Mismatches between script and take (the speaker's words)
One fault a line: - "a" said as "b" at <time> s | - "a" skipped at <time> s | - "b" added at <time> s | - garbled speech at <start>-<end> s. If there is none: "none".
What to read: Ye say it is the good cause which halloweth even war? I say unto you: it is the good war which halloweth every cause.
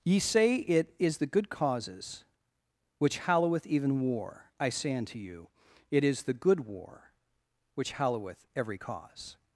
- "cause" said as "causes" at 1.5 s